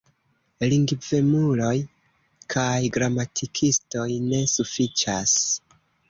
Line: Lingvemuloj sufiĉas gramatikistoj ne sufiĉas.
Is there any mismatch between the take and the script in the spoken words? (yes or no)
yes